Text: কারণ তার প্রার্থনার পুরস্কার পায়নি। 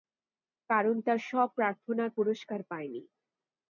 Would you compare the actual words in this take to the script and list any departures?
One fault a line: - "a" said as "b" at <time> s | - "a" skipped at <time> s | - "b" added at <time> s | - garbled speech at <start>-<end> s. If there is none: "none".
- "সব" added at 1.3 s